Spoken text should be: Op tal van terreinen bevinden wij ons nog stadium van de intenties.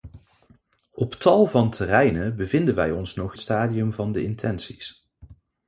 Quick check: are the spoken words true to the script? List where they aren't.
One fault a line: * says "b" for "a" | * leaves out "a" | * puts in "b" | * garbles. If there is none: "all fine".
all fine